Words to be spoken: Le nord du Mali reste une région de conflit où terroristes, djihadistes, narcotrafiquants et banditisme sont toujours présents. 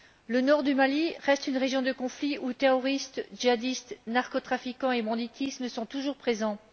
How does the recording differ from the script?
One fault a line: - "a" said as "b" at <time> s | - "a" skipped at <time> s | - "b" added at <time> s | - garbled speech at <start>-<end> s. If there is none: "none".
none